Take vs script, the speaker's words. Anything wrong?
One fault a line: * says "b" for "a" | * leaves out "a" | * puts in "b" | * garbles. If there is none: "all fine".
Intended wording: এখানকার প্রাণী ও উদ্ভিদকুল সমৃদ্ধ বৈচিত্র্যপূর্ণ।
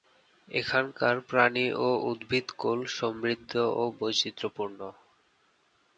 * puts in "ও"